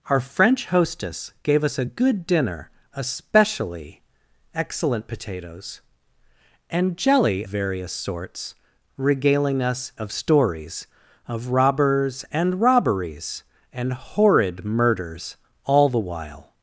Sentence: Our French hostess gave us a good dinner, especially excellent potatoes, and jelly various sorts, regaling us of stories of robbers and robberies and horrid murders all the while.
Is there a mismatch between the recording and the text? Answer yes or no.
no